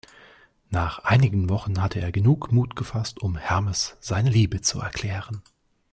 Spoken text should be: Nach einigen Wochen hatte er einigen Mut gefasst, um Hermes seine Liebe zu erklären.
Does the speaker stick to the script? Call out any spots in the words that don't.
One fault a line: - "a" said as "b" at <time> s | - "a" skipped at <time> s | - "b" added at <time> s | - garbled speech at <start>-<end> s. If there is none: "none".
- "einigen" said as "genug" at 2.1 s